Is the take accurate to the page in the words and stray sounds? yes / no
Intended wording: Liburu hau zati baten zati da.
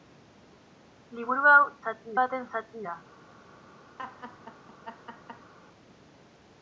no